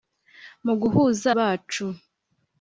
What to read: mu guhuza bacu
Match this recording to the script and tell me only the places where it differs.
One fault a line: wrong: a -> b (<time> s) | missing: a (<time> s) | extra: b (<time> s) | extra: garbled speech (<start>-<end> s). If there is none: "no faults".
no faults